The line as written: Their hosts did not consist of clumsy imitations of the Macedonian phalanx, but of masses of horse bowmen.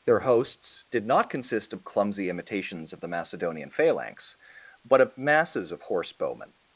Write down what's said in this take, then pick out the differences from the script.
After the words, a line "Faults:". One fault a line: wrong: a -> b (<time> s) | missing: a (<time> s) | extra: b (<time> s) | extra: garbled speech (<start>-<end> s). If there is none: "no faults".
Their hosts did not consist of clumsy imitations of the Macedonian phalanx, but of masses of horse bowmen.
Faults:
no faults